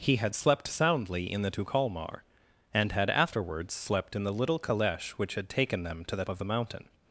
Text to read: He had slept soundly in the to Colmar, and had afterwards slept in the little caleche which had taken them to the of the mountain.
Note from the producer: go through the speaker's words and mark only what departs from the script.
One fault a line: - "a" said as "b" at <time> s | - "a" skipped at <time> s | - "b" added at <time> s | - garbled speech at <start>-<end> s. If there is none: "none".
none